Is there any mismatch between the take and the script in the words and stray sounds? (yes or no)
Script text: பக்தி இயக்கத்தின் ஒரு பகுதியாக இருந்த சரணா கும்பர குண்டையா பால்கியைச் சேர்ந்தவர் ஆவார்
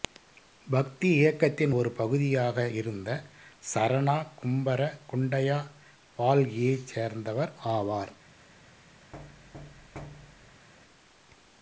yes